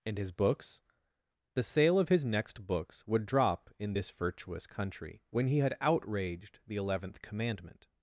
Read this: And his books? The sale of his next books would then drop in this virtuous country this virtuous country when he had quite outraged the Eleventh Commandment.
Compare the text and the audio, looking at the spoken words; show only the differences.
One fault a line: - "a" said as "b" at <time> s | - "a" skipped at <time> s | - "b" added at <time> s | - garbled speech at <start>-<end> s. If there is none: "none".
- "then" skipped at 3.3 s
- "this virtuous country" skipped at 5.2 s
- "quite" skipped at 5.8 s